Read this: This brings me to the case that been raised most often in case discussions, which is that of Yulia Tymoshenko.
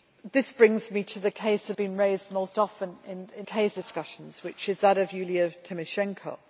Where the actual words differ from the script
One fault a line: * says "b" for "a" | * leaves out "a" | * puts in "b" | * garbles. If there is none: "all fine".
all fine